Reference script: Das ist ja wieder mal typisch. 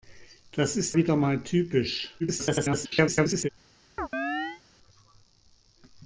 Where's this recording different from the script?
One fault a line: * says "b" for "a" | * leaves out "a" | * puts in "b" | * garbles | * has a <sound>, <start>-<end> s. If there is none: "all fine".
* leaves out "ja"
* garbles
* has a chirp, 4.0-4.6 s